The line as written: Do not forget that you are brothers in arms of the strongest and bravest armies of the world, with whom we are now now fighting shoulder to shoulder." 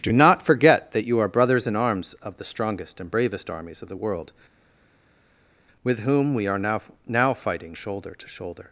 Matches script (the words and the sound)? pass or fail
pass